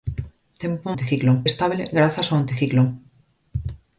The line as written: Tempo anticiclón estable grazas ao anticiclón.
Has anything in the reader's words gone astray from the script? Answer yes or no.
no